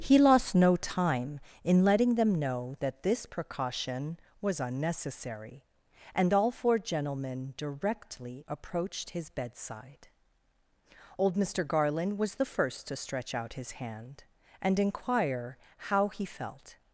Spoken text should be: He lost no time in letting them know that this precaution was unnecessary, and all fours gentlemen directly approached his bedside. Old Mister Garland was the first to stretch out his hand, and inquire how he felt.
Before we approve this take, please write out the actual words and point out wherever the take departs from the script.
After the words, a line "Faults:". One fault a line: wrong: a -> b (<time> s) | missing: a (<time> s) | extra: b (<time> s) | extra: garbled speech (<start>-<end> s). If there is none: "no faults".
He lost no time in letting them know that this precaution was unnecessary, and all four gentlemen directly approached his bedside. Old Mister Garland was the first to stretch out his hand, and inquire how he felt.
Faults:
wrong: fours -> four (6.5 s)